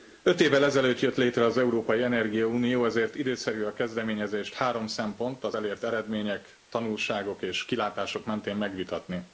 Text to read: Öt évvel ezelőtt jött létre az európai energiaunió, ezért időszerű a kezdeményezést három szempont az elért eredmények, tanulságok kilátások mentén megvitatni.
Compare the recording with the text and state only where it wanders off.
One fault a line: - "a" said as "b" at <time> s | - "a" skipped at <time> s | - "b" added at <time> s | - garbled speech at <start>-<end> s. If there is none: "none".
- "és" added at 7.4 s